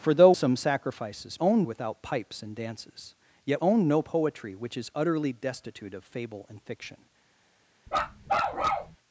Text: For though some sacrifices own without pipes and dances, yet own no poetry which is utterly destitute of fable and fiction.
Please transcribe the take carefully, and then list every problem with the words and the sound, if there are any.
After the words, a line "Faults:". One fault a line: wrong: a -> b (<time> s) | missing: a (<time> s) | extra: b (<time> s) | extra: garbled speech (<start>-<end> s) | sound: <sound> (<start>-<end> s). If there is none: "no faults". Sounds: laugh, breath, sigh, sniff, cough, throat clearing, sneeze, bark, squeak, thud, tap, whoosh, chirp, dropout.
For though some sacrifices own without pipes and dances, yet own no poetry which is utterly destitute of fable and fiction.
Faults:
sound: bark (7.9-9.0 s)